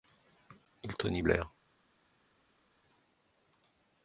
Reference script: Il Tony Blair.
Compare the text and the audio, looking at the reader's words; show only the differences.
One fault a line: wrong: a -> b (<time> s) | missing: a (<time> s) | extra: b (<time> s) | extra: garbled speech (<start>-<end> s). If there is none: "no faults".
no faults